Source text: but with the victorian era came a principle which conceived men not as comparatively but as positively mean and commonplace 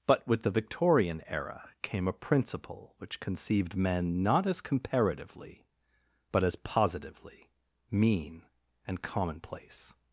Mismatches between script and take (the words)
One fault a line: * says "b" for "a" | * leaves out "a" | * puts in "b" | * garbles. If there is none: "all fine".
all fine